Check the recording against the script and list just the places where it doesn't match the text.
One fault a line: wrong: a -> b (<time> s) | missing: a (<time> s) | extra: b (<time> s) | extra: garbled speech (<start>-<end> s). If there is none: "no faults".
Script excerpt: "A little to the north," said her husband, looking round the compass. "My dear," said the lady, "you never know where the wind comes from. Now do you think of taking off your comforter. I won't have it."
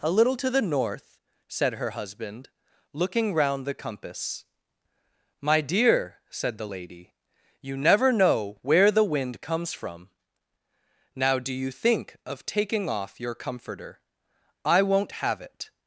no faults